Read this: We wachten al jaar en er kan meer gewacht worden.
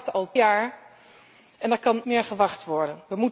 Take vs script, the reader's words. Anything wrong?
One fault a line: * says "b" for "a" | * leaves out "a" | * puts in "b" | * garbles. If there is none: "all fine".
all fine